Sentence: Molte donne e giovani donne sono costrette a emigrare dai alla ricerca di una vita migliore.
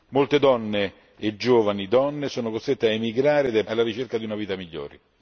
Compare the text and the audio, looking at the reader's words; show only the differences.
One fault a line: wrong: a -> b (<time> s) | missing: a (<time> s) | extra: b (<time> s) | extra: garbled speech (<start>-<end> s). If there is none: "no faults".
no faults